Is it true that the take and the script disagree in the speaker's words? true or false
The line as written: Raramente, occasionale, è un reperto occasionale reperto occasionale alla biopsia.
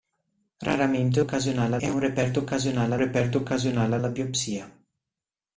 false